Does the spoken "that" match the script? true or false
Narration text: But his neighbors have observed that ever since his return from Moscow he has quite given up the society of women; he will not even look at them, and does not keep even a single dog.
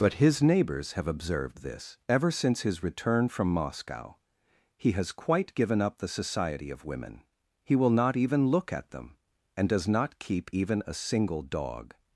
false